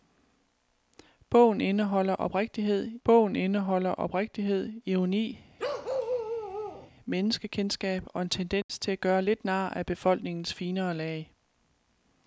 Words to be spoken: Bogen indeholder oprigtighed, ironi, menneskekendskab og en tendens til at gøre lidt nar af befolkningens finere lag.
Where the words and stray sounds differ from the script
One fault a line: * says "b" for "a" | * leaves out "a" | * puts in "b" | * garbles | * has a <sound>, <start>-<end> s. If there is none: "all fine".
* puts in "bogen indeholder oprigtighed"
* has a bark, 5.6-6.9 s
* has a dropout, 8.6-8.7 s